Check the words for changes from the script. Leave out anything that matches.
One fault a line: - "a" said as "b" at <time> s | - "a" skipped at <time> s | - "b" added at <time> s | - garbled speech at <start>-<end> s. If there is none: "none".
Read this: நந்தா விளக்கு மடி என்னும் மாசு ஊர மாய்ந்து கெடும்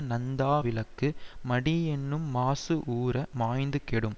none